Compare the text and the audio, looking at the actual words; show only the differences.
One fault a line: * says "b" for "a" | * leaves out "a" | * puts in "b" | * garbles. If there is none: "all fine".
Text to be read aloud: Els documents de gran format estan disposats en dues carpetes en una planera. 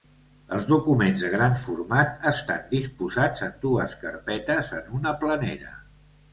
all fine